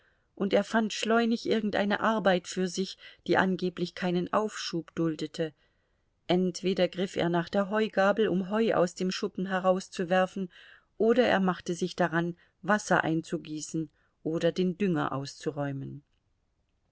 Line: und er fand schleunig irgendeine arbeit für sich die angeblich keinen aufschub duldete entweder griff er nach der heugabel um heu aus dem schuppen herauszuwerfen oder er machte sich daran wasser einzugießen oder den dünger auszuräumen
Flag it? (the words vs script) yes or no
no